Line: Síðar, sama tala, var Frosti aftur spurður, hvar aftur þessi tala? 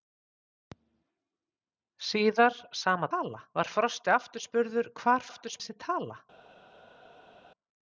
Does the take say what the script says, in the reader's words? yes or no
yes